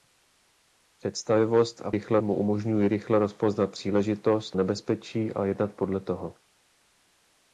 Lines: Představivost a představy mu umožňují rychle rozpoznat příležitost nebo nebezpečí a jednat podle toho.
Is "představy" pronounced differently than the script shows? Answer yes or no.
yes